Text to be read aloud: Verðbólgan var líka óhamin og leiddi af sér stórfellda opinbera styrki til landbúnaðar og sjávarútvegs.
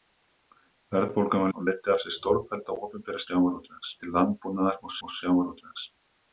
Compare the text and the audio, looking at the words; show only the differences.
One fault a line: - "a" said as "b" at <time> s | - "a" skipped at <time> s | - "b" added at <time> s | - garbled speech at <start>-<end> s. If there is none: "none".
- "líka óhamin" skipped at 1.5 s
- "styrki" said as "sjávarútvegs" at 3.2 s
- "og" added at 5.0 s